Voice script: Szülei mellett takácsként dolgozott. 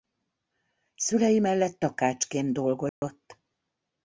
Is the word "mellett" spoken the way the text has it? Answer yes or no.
yes